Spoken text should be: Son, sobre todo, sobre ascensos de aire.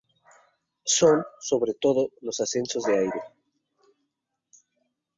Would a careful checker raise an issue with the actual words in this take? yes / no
yes